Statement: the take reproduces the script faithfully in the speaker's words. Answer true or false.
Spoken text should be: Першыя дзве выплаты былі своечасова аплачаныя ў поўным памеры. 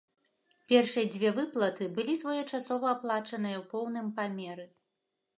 true